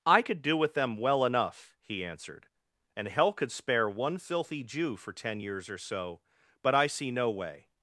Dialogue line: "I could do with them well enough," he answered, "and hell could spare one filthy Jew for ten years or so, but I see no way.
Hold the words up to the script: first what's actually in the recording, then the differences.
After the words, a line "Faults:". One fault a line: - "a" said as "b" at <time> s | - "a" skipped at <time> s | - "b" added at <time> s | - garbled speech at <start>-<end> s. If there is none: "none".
"I could do with them well enough," he answered, "and hell could spare one filthy Jew for ten years or so, but I see no way.
Faults:
none